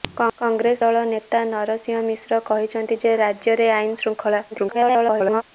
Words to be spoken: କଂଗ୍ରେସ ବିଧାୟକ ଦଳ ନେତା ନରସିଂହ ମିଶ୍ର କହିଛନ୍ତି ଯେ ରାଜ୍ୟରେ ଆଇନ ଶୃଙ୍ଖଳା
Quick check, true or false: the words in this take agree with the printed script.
false